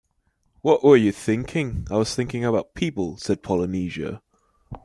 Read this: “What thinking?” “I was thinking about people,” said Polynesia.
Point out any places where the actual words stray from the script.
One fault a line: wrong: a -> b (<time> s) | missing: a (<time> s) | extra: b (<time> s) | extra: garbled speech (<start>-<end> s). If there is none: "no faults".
extra: were you (0.8 s)